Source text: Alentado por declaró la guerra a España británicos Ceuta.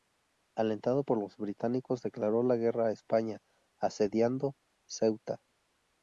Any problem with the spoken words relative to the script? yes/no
yes